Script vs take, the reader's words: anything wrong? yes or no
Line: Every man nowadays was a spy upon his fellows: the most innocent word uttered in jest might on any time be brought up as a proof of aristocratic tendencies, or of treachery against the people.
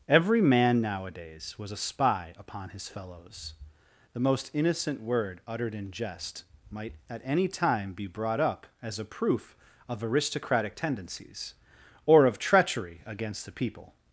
yes